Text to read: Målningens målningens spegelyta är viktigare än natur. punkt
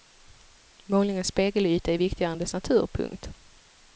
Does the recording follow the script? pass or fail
fail